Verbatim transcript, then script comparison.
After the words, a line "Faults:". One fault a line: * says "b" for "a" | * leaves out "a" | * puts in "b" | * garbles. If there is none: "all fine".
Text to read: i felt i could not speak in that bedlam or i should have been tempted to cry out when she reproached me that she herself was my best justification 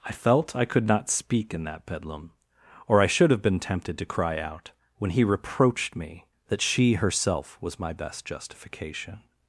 i felt i could not speak in that bedlam or i should have been tempted to cry out when he reproached me that she herself was my best justification
Faults:
* says "he" for "she"